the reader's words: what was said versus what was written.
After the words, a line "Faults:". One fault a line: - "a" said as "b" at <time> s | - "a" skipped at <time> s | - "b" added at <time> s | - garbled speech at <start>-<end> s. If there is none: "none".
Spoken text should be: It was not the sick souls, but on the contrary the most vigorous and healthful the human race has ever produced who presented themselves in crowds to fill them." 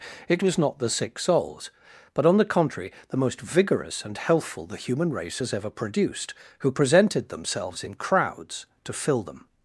It was not the sick souls, but on the contrary the most vigorous and healthful the human race has ever produced who presented themselves in crowds to fill them."
Faults:
none